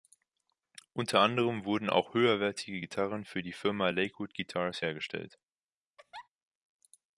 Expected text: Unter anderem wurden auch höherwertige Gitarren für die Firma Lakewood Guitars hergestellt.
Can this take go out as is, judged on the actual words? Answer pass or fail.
pass